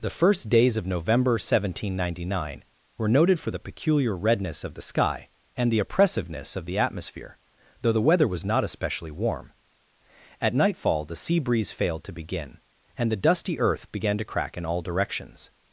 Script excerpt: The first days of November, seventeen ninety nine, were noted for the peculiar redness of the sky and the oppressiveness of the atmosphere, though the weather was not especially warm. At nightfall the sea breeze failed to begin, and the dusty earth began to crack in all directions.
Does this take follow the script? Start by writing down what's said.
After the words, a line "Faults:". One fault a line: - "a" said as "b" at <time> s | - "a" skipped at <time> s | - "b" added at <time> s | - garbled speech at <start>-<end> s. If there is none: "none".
The first days of November, seventeen ninety nine, were noted for the peculiar redness of the sky and the oppressiveness of the atmosphere, though the weather was not especially warm. At nightfall the sea breeze failed to begin, and the dusty earth began to crack in all directions.
Faults:
none